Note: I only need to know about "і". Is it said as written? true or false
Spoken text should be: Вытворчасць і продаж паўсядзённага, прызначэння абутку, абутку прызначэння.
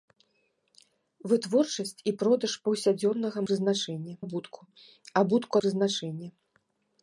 true